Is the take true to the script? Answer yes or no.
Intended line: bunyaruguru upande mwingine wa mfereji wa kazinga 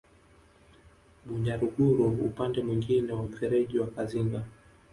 yes